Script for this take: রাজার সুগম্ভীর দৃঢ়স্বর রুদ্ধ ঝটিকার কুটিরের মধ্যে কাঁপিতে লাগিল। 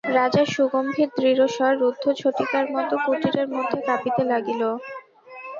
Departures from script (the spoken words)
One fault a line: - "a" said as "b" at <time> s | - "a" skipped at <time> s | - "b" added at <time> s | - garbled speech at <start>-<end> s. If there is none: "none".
- "মতো" added at 2.7 s